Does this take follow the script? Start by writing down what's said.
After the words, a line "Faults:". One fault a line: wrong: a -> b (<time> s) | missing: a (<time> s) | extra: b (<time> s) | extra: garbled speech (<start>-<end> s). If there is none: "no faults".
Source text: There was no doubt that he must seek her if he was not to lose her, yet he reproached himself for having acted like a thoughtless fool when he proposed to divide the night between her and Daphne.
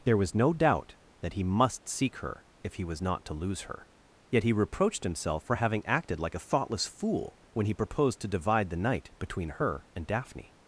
There was no doubt that he must seek her if he was not to lose her, yet he reproached himself for having acted like a thoughtless fool when he proposed to divide the night between her and Daphne.
Faults:
no faults